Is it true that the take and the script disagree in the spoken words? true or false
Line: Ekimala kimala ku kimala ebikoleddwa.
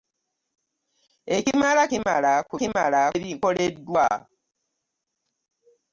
false